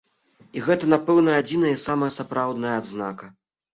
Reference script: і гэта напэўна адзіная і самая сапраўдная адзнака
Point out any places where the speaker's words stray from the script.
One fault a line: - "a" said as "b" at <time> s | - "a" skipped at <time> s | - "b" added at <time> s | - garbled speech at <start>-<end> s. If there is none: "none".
none